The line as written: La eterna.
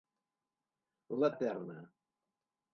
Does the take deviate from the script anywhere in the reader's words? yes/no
no